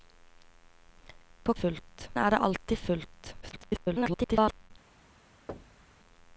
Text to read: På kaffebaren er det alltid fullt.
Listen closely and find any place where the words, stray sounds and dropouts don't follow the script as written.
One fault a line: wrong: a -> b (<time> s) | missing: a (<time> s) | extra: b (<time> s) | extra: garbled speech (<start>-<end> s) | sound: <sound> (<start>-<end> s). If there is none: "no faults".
wrong: kaffebaren -> fullt (1.5 s)
extra: garbled speech (3.4-4.7 s)
sound: thud (5.5-6.0 s)